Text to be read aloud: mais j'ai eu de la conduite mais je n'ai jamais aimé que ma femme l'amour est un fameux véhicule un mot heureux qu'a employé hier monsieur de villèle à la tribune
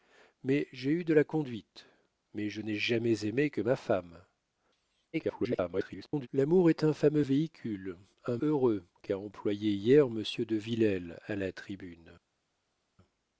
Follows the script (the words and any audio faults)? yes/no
no